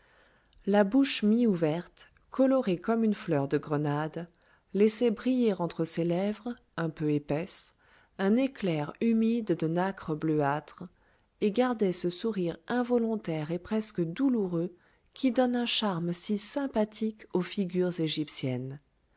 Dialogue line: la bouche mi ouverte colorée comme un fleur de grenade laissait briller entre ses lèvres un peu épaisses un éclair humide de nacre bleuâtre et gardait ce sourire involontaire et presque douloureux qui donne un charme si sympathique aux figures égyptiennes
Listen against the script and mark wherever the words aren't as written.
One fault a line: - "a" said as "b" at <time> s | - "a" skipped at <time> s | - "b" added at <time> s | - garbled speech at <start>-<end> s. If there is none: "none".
- "un" said as "une" at 3.0 s